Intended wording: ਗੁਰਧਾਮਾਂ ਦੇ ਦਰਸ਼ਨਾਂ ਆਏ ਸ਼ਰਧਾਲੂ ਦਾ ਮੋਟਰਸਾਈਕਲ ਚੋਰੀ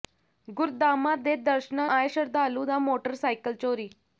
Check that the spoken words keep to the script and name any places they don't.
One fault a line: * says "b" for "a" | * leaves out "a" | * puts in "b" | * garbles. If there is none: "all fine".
all fine